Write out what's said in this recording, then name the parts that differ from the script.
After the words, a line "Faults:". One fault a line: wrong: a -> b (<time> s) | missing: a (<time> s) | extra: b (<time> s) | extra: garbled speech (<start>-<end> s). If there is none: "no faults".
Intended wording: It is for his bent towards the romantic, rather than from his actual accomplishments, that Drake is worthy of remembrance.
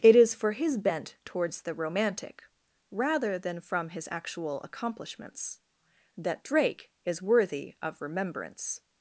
It is for his bent towards the romantic, rather than from his actual accomplishments, that Drake is worthy of remembrance.
Faults:
no faults